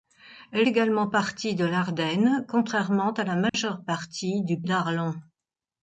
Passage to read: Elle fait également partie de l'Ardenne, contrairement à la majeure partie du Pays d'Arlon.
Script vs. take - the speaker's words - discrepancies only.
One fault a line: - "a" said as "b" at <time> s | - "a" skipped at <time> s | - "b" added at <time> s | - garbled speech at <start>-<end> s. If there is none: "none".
- "fait" skipped at 0.7 s
- "Pays" skipped at 4.6 s